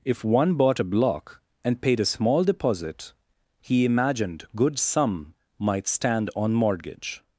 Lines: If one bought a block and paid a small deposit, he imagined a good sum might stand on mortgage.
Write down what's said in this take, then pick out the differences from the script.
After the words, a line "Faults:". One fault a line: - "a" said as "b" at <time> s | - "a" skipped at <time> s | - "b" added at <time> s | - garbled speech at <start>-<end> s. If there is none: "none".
If one bought a block and paid a small deposit, he imagined good sum might stand on mortgage.
Faults:
- "a" skipped at 4.5 s